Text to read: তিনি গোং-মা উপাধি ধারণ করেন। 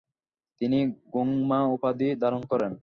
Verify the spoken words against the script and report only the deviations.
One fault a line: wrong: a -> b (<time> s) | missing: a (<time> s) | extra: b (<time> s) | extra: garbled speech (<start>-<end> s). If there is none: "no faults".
no faults